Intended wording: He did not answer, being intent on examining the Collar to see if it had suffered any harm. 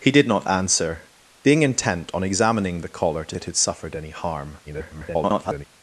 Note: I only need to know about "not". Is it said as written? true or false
true